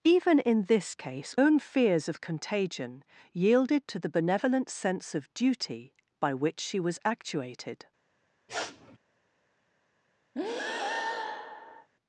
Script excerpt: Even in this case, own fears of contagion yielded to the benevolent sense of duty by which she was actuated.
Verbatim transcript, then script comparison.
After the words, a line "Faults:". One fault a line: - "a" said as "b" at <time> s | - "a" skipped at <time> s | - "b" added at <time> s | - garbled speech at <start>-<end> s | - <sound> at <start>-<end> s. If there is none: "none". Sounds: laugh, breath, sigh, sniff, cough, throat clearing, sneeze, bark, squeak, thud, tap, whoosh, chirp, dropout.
Even in this case, own fears of contagion yielded to the benevolent sense of duty by which she was actuated.
Faults:
- sniff at 8.5-9.0 s
- breath at 10.3-11.9 s